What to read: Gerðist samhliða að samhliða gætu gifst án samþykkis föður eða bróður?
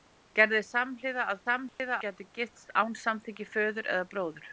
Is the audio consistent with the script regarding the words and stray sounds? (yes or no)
no